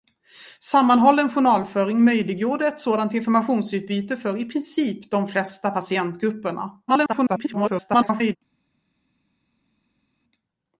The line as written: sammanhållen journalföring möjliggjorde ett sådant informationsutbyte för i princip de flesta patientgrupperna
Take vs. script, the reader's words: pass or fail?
fail